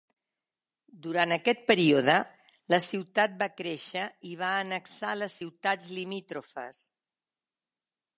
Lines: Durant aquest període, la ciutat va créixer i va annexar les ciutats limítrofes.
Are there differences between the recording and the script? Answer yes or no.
no